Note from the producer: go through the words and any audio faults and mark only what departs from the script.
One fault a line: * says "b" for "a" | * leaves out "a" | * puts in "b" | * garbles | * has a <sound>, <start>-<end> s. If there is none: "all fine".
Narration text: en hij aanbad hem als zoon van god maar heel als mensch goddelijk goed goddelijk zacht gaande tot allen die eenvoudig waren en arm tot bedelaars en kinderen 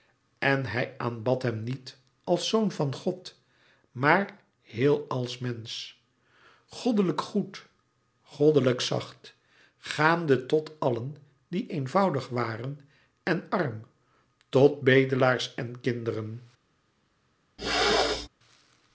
* puts in "niet"
* has a throat clearing, 17.6-18.3 s